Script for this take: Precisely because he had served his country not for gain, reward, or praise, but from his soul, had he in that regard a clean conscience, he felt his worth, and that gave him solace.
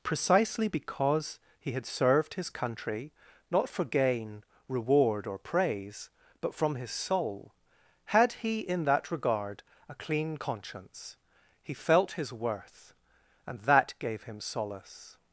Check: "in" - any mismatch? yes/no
no